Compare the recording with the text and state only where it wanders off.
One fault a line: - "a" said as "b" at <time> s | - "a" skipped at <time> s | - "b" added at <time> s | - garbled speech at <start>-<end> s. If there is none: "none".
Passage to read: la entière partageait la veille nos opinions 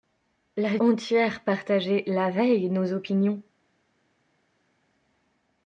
none